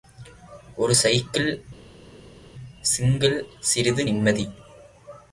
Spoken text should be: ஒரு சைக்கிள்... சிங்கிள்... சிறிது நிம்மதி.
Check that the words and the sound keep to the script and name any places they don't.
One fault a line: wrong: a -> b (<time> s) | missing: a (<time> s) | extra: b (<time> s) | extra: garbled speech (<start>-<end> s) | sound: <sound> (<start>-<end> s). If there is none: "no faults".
no faults